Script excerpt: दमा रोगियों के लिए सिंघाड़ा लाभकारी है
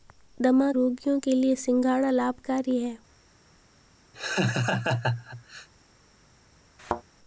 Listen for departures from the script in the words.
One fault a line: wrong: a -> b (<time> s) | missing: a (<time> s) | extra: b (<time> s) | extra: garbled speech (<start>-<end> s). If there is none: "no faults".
no faults